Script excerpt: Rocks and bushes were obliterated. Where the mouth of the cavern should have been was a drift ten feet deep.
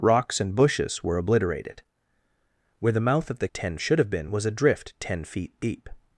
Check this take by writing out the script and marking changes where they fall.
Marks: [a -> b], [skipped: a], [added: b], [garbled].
Rocks and bushes were obliterated. Where the mouth of the [cavern -> ten] should have been was a drift ten feet deep.